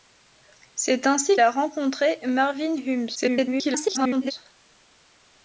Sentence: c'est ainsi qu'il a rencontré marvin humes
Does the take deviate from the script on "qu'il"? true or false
true